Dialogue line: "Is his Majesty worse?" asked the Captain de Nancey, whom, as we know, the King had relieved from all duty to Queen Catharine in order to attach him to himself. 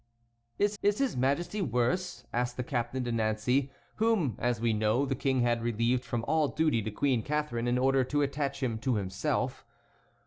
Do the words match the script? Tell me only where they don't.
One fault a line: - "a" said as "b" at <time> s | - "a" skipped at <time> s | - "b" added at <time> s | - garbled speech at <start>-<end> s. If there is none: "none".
- "is" added at 0.8 s